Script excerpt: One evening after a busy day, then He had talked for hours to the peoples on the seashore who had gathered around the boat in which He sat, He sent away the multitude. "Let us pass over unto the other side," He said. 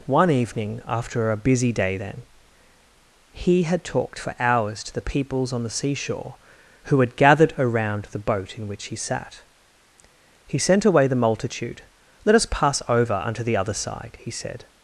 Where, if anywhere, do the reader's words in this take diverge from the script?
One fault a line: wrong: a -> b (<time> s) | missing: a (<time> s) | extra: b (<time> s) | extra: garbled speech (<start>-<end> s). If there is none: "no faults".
no faults